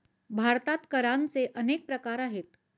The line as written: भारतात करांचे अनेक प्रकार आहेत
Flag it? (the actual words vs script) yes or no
no